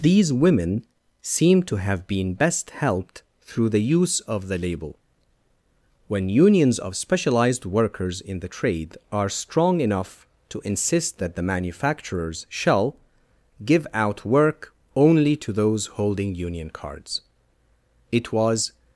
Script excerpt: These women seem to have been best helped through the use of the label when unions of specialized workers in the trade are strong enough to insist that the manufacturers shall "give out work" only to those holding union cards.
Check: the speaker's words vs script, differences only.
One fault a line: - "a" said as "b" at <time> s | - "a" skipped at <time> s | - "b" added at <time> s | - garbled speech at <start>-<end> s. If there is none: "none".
- "It was" added at 18.1 s